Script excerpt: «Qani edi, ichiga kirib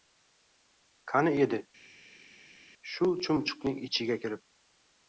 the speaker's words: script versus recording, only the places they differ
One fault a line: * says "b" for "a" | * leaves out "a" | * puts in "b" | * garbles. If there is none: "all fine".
* puts in "shu chumchuqning"